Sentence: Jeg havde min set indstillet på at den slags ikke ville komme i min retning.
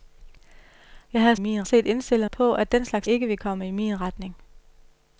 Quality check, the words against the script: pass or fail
pass